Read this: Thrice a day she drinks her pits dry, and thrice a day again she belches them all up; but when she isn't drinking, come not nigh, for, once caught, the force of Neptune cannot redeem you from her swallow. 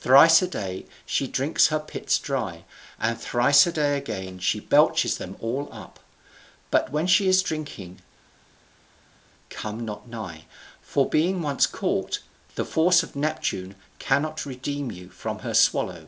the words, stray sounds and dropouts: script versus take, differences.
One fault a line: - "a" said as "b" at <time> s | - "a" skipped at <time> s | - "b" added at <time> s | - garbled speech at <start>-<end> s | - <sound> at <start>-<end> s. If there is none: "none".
- "isn't" said as "is" at 7.3 s
- "being" added at 11.1 s